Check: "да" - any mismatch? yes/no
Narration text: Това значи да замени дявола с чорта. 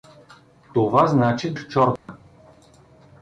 yes